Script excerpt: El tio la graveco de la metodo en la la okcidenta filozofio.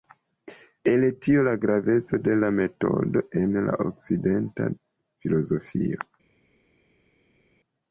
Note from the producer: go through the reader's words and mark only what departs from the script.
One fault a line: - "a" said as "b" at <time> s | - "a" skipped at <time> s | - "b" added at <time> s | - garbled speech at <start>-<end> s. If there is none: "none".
- "la" skipped at 3.8 s